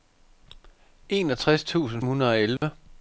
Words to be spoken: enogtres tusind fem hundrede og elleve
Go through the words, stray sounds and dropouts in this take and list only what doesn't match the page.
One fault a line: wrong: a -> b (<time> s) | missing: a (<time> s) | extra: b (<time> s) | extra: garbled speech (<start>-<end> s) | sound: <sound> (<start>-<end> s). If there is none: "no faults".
missing: fem (2.0 s)
sound: dropout (2.6-2.6 s)